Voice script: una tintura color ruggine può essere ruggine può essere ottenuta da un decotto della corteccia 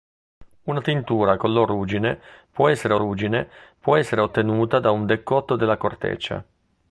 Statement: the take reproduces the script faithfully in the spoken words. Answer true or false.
true